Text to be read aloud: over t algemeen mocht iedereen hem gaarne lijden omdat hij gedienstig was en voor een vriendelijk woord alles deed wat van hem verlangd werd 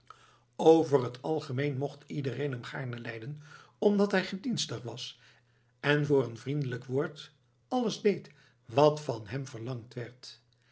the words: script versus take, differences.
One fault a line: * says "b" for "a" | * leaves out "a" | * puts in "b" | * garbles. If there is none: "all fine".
all fine